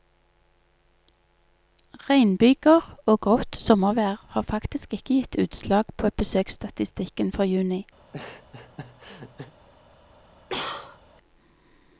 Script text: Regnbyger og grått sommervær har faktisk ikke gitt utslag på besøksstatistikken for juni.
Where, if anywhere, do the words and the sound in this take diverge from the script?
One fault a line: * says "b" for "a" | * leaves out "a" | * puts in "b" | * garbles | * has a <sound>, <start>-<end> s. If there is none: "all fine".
* has a laugh, 8.0-9.5 s
* has a cough, 10.5-11.0 s